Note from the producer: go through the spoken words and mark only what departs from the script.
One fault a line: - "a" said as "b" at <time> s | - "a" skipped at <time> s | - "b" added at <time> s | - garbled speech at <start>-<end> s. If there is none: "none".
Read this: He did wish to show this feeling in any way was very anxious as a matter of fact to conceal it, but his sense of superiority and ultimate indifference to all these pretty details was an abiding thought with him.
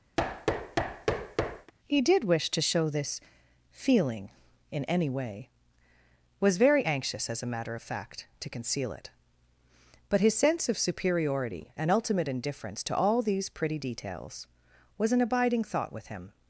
none